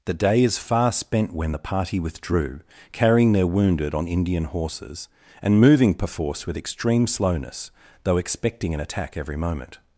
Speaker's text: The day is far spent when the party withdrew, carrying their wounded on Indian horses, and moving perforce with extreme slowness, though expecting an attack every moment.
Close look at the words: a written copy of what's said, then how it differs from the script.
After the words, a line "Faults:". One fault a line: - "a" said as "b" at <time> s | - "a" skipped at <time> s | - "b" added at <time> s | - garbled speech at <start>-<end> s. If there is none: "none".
The day is far spent when the party withdrew, carrying their wounded on Indian horses, and moving perforce with extreme slowness, though expecting an attack every moment.
Faults:
none